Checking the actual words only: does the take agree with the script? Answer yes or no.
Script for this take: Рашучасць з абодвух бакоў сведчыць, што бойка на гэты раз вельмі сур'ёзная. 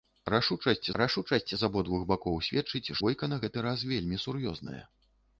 no